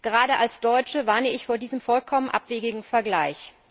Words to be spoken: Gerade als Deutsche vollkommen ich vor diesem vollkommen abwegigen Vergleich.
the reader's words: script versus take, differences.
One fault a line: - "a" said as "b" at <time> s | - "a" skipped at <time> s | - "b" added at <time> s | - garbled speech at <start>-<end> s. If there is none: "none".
- "vollkommen" said as "warne" at 1.1 s